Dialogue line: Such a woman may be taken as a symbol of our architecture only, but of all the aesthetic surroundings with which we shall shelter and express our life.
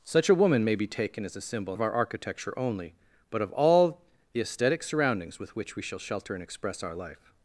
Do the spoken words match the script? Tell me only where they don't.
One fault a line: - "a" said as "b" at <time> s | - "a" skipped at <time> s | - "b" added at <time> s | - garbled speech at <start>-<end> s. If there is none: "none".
none